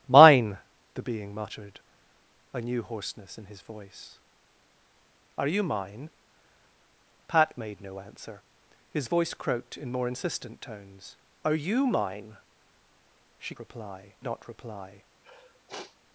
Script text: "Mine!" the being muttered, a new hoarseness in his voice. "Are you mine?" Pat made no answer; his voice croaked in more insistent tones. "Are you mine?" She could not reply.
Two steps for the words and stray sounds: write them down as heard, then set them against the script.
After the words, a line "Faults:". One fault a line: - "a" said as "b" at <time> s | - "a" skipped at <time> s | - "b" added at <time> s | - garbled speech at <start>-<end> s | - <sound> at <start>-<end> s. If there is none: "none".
"Mine!" the being muttered, a new hoarseness in his voice. "Are you mine?" Pat made no answer; his voice croaked in more insistent tones. "Are you mine?" She reply not reply.
Faults:
- "could" said as "reply" at 13.6 s
- sniff at 15.2-16.0 s